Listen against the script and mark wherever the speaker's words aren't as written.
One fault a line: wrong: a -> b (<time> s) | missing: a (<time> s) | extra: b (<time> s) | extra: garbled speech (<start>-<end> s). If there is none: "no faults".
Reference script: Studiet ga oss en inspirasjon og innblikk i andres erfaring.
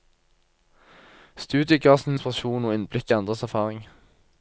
no faults